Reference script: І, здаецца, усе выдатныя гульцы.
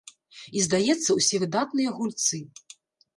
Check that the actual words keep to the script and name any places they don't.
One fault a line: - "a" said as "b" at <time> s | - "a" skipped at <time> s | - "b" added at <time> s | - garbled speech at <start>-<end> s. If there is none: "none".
none